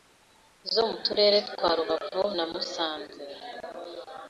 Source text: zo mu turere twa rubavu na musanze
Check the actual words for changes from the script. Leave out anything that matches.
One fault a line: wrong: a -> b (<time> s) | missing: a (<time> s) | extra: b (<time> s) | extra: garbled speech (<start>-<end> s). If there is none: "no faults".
no faults